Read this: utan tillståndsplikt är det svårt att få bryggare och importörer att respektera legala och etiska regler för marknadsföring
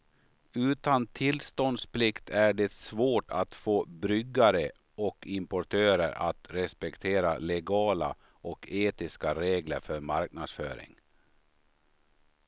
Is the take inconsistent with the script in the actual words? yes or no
no